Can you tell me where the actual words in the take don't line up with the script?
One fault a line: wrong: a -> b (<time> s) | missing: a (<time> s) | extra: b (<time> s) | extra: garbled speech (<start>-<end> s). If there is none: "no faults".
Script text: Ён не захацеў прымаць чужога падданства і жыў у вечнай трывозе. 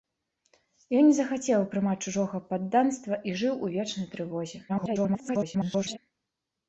extra: garbled speech (4.7-6.0 s)